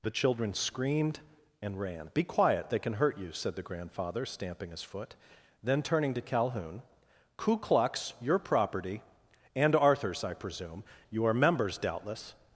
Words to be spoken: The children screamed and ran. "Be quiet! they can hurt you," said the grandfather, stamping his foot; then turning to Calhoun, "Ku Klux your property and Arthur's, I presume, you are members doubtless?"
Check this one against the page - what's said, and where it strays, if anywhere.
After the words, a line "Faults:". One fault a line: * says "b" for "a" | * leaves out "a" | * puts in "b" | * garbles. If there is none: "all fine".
The children screamed and ran. "Be quiet! they can hurt you," said the grandfather, stamping his foot; then turning to Calhoun, "Ku Klux your property and Arthur's, I presume, you are members doubtless?"
Faults:
all fine